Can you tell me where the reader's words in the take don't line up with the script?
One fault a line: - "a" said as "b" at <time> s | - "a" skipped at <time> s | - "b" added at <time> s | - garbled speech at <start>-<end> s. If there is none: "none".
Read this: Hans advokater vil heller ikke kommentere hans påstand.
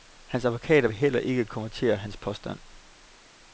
none